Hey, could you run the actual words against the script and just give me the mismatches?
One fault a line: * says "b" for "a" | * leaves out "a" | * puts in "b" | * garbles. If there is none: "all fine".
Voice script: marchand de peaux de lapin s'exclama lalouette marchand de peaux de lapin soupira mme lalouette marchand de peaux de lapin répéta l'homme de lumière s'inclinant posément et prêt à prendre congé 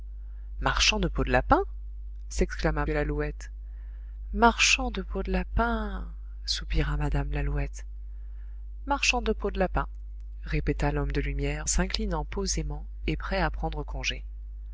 all fine